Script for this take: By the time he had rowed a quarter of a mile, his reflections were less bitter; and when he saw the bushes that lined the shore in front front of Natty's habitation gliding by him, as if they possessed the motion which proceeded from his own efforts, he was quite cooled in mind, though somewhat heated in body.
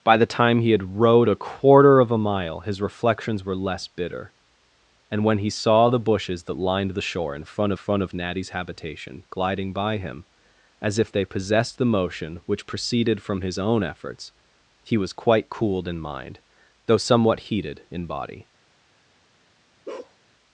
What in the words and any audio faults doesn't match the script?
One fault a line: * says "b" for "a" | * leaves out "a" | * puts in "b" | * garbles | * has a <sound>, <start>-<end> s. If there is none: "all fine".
* has a bark, 19.9-20.2 s